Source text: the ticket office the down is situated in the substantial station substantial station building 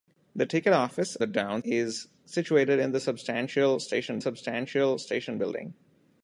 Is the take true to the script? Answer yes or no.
yes